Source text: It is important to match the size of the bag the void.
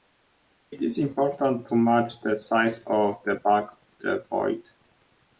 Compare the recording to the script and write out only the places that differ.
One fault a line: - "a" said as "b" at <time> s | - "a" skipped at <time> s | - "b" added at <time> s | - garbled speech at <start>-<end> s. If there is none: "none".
none